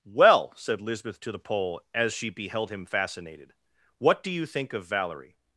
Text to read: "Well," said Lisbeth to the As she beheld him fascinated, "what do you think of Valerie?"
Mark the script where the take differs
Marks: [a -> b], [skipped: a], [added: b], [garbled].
"Well," said Lisbeth to the [added: Pole] As she beheld him fascinated, "what do you think of Valerie?"